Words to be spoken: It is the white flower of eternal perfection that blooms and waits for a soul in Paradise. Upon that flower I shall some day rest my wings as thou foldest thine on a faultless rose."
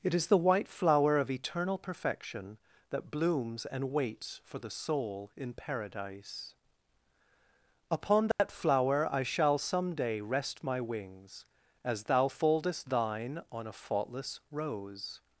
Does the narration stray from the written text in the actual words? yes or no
yes